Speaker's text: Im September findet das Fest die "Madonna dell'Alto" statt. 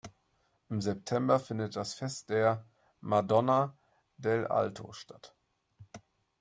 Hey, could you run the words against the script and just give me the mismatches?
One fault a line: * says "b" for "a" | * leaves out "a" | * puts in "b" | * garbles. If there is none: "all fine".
* says "der" for "die"